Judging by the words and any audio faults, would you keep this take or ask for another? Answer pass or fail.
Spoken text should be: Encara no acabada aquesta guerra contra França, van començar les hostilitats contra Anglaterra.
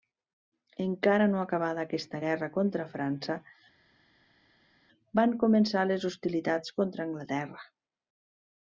pass